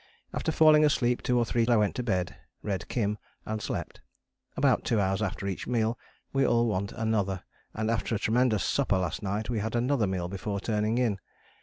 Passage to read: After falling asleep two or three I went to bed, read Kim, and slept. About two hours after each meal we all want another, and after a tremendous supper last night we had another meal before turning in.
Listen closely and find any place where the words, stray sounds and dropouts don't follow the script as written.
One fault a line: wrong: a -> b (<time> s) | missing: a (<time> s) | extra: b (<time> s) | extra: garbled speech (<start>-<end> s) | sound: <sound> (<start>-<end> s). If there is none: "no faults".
no faults